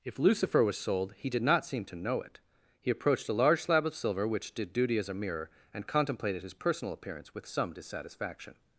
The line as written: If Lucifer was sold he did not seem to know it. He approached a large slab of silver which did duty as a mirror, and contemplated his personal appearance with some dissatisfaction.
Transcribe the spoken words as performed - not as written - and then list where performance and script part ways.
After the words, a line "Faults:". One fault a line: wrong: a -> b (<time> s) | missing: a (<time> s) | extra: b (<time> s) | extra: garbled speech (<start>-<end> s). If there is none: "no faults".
If Lucifer was sold he did not seem to know it. He approached a large slab of silver which did duty as a mirror, and contemplated his personal appearance with some dissatisfaction.
Faults:
no faults